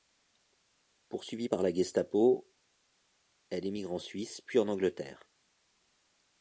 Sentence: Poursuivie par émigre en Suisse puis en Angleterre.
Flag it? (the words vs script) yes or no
yes